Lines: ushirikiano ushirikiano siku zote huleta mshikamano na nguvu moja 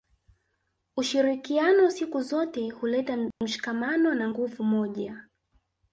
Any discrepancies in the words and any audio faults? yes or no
yes